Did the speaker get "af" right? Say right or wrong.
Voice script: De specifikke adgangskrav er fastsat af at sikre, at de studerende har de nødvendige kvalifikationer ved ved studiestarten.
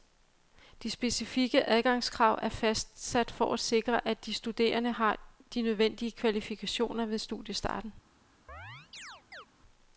wrong